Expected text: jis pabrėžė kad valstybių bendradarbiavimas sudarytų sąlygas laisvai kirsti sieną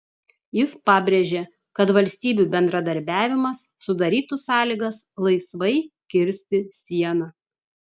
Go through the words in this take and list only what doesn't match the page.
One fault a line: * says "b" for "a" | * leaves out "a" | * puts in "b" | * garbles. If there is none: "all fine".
all fine